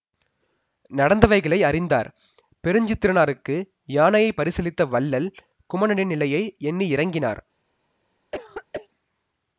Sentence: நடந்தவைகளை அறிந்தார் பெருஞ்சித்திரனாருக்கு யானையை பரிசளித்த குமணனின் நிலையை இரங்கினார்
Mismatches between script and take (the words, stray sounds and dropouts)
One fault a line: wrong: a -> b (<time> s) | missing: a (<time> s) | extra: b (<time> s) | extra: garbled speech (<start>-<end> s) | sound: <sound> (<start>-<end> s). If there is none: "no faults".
extra: வள்ளல் (4.9 s)
extra: எண்ணி (6.6 s)
sound: throat clearing (8.3-8.9 s)